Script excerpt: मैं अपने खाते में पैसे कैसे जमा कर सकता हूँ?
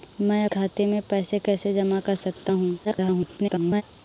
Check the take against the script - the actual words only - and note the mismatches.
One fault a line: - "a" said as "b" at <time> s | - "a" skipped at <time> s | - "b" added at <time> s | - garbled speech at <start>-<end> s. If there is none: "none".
- "अपने" skipped at 0.5 s
- garbled speech at 2.8-3.8 s